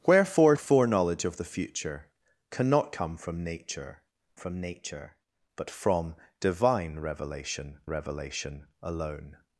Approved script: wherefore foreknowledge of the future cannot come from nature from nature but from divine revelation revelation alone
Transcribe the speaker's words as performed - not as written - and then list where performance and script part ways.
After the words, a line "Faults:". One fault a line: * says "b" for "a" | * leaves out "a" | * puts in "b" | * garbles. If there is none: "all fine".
wherefore foreknowledge of the future cannot come from nature from nature but from divine revelation revelation alone
Faults:
all fine